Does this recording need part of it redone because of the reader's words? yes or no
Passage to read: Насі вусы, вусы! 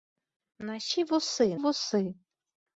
no